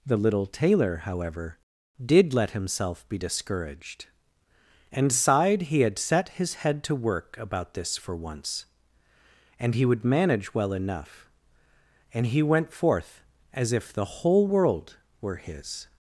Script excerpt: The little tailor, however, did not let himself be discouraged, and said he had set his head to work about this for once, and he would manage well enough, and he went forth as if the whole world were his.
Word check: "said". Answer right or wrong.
wrong